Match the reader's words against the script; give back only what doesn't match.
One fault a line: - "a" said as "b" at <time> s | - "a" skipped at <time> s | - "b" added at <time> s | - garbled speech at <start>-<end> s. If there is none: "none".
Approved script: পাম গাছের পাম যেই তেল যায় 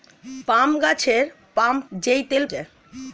none